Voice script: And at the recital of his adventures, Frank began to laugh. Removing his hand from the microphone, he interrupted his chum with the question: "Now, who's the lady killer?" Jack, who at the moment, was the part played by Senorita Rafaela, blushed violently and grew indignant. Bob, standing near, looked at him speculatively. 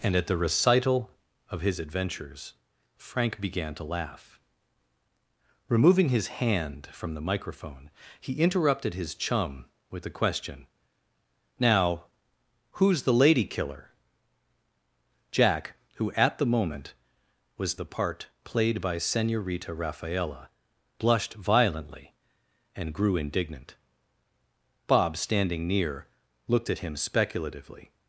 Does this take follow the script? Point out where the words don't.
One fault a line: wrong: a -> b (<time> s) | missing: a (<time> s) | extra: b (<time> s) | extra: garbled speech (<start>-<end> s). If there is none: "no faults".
no faults